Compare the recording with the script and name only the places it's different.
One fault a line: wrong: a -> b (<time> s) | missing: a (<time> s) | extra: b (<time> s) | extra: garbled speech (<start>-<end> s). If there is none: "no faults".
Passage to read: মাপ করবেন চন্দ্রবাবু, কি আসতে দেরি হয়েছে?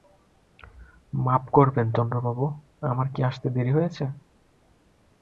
extra: আমার (2.9 s)